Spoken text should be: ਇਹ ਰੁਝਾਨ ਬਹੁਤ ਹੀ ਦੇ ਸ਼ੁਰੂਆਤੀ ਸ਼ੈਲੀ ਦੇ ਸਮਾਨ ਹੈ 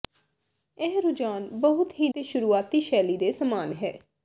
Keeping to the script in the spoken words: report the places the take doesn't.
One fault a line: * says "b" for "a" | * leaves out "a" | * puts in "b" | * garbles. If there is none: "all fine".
all fine